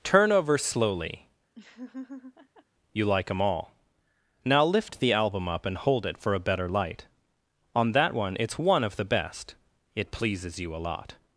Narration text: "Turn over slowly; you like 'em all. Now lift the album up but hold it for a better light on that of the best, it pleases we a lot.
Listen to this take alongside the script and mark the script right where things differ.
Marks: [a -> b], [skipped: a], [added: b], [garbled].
"Turn over slowly; you like 'em all. Now lift the album up [but -> and] hold it for a better light on that [added: one It's one] of the best, it pleases [we -> you] a lot.